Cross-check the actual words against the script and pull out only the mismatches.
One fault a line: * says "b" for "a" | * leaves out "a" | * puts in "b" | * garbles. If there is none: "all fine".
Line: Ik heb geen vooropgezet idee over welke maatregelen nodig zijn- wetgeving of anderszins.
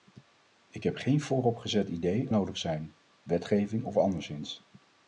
* leaves out "over welke maatregelen"